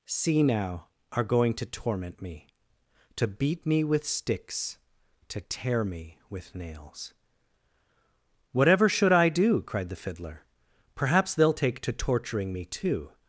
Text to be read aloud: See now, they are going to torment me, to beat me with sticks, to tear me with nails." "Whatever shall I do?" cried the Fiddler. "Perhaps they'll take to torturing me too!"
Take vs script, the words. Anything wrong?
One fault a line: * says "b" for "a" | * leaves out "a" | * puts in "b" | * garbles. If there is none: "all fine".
* leaves out "they"
* says "should" for "shall"